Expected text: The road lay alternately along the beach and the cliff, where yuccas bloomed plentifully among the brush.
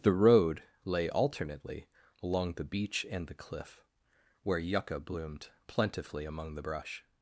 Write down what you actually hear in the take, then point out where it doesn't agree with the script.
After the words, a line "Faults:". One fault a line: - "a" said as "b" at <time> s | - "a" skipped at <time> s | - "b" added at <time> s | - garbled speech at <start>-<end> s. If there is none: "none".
The road lay alternately along the beach and the cliff, where yucca bloomed plentifully among the brush.
Faults:
- "yuccas" said as "yucca" at 4.6 s